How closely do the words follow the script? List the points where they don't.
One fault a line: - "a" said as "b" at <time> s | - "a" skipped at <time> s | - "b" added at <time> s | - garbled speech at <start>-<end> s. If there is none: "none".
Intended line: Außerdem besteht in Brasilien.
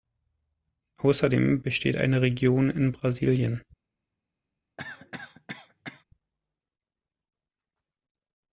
- "eine Region" added at 2.0 s